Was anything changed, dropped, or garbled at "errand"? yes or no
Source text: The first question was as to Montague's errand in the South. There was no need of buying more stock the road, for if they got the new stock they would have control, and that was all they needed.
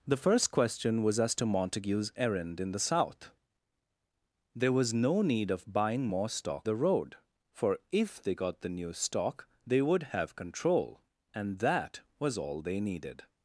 no